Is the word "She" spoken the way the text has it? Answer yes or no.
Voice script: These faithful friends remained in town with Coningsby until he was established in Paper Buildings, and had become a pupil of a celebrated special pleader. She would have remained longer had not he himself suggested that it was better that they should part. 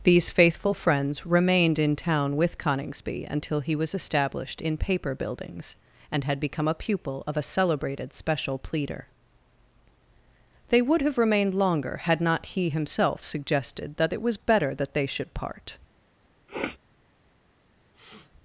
no